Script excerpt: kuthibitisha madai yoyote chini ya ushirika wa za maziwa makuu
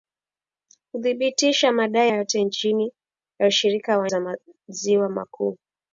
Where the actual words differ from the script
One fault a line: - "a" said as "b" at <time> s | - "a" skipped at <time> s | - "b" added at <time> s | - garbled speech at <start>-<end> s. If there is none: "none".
none